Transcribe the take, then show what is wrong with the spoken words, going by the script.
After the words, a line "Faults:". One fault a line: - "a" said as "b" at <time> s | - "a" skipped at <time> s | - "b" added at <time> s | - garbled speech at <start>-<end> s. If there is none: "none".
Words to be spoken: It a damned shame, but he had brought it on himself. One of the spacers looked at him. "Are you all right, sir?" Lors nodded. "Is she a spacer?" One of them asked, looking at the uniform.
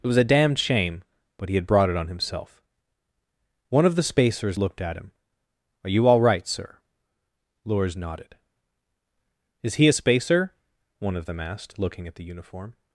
It was a damned shame, but he had brought it on himself. One of the spacers looked at him. "Are you all right, sir?" Lors nodded. "Is he a spacer?" One of them asked, looking at the uniform.
Faults:
- "was" added at 0.1 s
- "she" said as "he" at 9.7 s